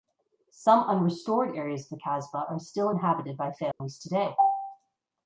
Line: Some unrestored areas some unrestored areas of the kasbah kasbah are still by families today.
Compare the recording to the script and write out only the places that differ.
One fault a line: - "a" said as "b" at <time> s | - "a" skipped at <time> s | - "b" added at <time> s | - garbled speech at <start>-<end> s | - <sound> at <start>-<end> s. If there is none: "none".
- "some unrestored areas" skipped at 1.8 s
- "kasbah" skipped at 2.5 s
- "inhabited" added at 2.9 s
- dropout at 3.7-3.8 s